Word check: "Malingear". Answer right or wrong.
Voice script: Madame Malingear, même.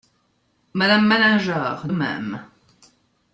right